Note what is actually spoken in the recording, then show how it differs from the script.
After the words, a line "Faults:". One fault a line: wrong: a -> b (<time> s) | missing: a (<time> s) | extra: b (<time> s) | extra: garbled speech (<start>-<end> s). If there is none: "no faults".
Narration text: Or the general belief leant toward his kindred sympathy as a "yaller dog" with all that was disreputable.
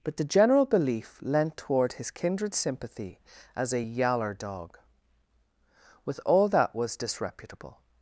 But the general belief leant toward his kindred sympathy as a "yaller dog" with all that was disreputable.
Faults:
wrong: Or -> But (0.0 s)